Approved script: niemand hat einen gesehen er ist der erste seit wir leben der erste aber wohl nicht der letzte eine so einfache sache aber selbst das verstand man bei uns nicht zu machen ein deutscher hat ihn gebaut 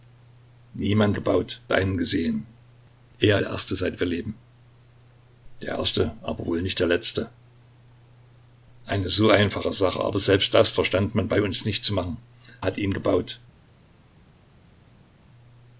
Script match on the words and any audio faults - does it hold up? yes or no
no